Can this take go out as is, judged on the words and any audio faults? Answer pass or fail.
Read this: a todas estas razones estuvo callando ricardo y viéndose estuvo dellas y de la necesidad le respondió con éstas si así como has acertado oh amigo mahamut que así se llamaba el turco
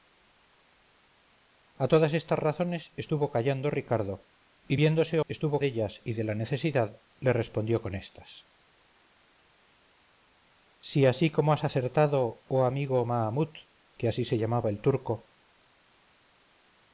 pass